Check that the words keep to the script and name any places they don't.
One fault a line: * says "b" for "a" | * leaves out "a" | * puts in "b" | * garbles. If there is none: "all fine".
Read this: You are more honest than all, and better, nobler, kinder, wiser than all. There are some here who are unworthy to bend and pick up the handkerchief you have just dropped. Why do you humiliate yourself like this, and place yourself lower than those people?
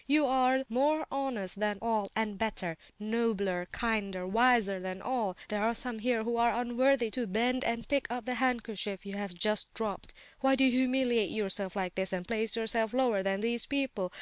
* says "these" for "those"